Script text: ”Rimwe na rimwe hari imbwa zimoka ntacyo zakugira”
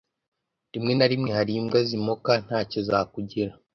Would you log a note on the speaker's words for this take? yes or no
no